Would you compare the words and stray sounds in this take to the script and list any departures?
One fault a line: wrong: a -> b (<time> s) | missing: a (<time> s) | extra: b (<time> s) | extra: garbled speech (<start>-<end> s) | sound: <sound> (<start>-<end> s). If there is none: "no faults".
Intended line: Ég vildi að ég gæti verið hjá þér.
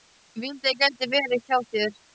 no faults